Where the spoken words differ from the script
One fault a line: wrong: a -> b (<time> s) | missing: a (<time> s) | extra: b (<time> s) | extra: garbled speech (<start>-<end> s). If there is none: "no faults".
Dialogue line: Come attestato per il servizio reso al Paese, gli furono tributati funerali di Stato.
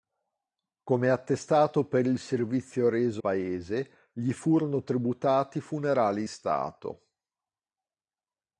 missing: al (3.2 s)
missing: di (6.2 s)